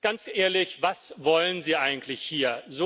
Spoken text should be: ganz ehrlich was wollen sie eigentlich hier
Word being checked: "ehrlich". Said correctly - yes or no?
yes